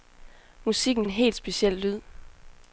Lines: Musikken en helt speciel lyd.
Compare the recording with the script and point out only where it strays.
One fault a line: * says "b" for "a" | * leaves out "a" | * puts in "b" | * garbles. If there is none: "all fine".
all fine